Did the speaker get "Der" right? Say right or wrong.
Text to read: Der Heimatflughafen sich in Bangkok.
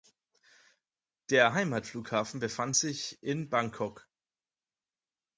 right